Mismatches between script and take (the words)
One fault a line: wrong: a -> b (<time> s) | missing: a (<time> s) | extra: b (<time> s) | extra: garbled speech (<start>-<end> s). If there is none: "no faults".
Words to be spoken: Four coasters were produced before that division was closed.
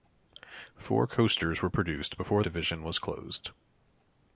missing: that (2.4 s)